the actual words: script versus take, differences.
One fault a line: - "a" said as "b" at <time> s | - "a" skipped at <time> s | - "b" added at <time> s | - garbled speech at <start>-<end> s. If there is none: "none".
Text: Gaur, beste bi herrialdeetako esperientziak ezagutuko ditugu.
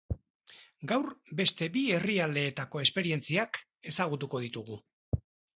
none